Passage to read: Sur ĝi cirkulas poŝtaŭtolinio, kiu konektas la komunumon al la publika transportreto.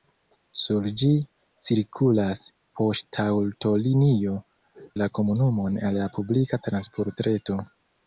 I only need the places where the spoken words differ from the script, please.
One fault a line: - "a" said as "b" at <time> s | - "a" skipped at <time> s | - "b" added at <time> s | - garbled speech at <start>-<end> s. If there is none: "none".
- "kiu konektas" skipped at 4.3 s